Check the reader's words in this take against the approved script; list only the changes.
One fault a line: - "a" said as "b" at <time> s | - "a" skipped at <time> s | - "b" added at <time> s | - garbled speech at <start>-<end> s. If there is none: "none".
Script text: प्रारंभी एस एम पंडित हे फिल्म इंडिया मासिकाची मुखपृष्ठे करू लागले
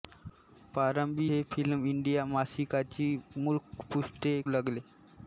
- "एस एम पंडित" skipped at 1.3 s
- "करू" skipped at 4.4 s